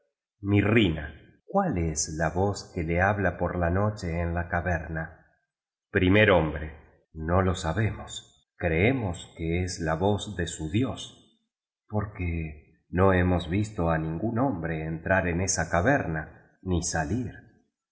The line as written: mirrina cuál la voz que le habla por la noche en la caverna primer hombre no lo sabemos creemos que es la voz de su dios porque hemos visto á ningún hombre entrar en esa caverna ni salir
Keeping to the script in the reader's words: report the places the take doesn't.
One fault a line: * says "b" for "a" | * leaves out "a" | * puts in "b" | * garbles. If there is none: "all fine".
* puts in "es"
* puts in "no"